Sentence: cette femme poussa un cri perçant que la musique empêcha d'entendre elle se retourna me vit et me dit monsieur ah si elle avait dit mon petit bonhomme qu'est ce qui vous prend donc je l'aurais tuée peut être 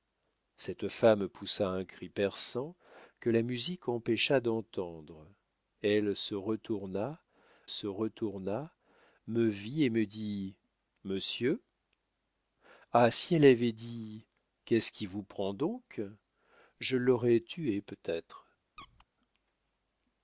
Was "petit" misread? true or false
true